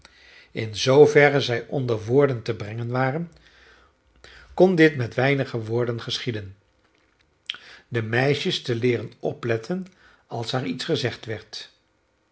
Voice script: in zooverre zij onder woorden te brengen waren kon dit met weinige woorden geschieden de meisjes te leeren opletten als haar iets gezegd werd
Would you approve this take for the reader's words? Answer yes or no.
yes